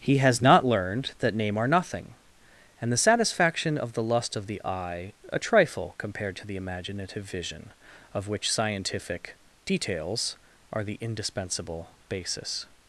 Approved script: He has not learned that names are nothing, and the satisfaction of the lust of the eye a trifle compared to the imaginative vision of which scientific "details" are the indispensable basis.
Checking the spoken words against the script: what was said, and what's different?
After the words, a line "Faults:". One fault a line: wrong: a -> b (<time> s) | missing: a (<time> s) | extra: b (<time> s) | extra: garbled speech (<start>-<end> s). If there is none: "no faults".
He has not learned that name are nothing, and the satisfaction of the lust of the eye a trifle compared to the imaginative vision of which scientific "details" are the indispensable basis.
Faults:
wrong: names -> name (1.4 s)